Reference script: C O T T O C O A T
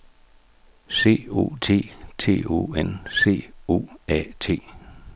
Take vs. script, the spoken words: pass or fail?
fail